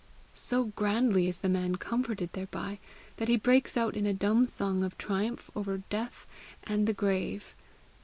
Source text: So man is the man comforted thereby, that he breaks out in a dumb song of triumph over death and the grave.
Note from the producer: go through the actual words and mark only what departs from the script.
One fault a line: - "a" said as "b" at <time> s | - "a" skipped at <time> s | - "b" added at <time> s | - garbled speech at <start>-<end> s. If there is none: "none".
- "man" said as "grandly" at 0.7 s